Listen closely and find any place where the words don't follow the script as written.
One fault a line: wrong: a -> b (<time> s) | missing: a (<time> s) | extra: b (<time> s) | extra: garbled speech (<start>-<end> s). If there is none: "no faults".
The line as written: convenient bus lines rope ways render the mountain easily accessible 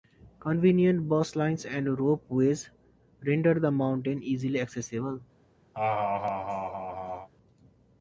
extra: and (1.6 s)